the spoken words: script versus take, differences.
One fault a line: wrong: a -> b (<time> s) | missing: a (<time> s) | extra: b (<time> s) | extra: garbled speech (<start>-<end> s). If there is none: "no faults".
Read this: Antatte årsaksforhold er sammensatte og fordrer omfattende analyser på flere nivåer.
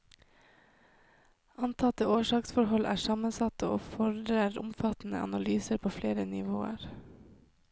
no faults